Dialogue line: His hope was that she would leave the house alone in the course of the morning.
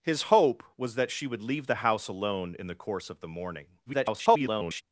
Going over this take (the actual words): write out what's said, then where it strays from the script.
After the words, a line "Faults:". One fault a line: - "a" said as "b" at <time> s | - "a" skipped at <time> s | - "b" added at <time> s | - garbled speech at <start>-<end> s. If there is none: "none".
His hope was that she would leave the house alone in the course of the morning. [garbled]
Faults:
- garbled speech at 3.9-4.8 s